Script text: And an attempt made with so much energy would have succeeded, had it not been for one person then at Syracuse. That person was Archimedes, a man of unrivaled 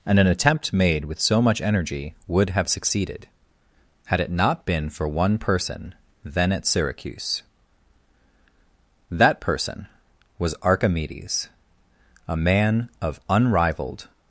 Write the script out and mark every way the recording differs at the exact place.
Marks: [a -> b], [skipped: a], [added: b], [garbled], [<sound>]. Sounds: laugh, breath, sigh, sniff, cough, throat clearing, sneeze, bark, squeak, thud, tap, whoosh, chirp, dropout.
And an attempt made with so much energy would have succeeded, had it not been for one person then at Syracuse. That person was Archimedes, a man of unrivaled